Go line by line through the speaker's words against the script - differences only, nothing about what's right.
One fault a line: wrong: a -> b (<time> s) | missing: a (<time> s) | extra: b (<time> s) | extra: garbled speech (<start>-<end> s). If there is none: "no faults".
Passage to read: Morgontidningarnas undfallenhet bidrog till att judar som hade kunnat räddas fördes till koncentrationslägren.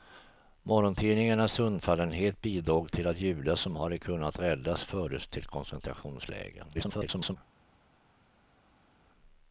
extra: garbled speech (6.7-7.4 s)